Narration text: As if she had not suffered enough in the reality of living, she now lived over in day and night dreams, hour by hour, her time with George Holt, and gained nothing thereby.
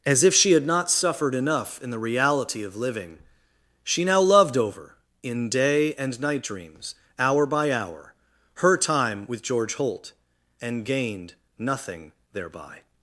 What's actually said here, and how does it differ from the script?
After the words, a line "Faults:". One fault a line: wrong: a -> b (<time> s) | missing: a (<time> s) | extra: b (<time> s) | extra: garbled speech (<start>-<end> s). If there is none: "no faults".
As if she had not suffered enough in the reality of living, she now loved over in day and night dreams, hour by hour, her time with George Holt, and gained nothing thereby.
Faults:
wrong: lived -> loved (4.2 s)